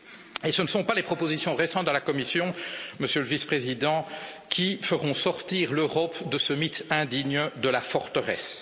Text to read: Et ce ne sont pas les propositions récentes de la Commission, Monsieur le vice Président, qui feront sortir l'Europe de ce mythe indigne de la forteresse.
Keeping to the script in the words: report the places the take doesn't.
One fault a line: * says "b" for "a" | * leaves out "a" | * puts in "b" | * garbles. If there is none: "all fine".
all fine